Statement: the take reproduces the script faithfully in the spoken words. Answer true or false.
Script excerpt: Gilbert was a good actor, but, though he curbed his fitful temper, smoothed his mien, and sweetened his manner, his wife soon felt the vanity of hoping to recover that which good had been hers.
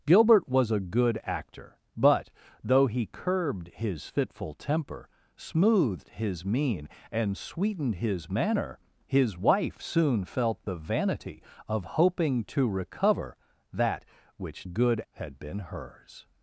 true